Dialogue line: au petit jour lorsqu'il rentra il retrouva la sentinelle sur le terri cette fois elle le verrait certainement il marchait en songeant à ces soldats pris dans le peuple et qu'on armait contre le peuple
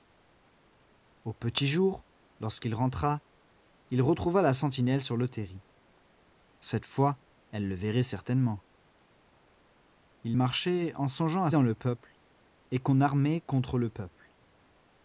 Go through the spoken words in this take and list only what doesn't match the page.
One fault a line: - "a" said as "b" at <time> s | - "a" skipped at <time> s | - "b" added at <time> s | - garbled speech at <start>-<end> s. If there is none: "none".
- "ces soldats pris" skipped at 11.5 s